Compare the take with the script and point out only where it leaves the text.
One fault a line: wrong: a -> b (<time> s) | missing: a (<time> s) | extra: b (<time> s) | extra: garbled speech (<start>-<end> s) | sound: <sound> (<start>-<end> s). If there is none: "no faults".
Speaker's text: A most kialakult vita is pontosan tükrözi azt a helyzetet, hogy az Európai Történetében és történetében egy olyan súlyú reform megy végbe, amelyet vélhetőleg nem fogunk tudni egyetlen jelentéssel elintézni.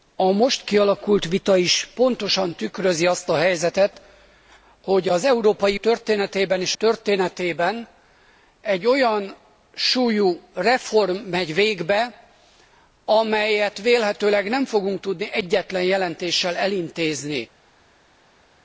no faults